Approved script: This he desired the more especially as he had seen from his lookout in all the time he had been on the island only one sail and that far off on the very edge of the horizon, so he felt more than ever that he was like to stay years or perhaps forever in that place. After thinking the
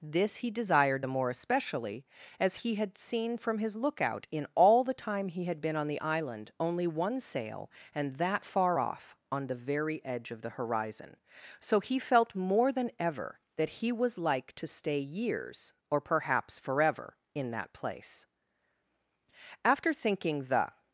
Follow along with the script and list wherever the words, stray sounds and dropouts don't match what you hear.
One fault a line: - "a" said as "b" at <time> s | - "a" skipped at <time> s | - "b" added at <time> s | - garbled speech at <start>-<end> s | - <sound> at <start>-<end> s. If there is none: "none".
none